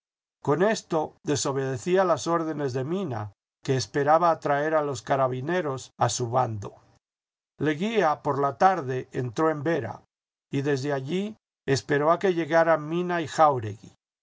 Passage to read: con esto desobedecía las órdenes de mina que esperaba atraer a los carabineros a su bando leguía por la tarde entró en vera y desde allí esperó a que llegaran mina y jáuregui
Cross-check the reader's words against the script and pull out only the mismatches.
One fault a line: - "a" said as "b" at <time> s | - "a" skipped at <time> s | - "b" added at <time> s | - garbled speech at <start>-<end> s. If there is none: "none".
none